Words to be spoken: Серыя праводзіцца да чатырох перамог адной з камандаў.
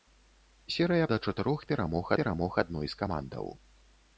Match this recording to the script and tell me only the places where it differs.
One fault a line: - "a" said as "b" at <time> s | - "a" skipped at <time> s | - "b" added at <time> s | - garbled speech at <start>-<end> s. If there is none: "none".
- "праводзіцца" skipped at 1.1 s
- "перамог" added at 2.2 s